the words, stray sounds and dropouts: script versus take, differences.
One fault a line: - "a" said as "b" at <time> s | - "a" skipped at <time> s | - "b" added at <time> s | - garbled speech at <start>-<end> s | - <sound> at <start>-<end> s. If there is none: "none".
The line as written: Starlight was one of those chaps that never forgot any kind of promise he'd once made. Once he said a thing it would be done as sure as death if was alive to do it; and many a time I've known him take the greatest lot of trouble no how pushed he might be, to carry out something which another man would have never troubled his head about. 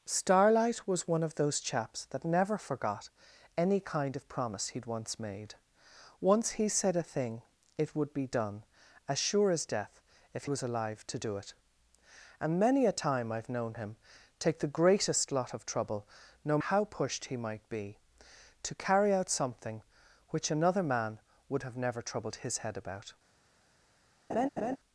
- laugh at 24.3-24.8 s